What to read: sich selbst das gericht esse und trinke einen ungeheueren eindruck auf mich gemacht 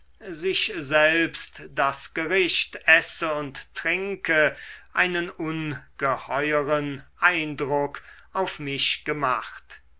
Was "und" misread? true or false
false